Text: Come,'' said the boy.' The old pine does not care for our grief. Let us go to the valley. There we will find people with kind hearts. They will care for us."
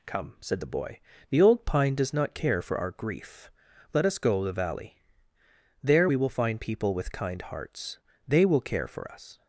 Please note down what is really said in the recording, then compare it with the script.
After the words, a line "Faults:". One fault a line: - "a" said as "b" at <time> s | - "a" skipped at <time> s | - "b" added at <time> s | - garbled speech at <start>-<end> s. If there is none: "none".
Come,'' said the boy.' The old pine does not care for our grief. Let us go the valley. There we will find people with kind hearts. They will care for us."
Faults:
- "to" skipped at 4.4 s